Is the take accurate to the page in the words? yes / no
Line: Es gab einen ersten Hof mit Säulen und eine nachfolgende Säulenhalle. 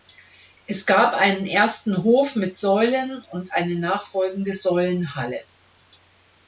yes